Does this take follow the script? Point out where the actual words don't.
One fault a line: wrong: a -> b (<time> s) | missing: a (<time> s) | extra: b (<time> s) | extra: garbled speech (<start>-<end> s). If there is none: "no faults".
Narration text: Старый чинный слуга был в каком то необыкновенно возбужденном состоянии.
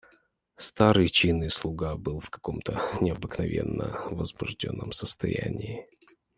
no faults